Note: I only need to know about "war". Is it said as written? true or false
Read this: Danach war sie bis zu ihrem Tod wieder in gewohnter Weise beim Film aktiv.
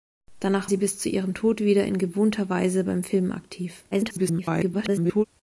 false